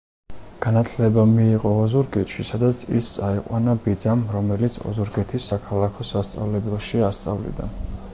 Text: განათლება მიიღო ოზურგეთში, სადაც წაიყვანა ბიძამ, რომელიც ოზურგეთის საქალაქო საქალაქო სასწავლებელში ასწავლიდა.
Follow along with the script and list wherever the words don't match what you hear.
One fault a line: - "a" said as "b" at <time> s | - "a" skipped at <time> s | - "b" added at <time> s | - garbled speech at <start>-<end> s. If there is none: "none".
- "ის" added at 3.0 s
- "საქალაქო" skipped at 6.1 s